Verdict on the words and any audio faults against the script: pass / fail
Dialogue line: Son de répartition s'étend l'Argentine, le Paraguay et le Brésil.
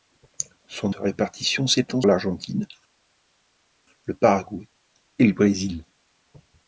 pass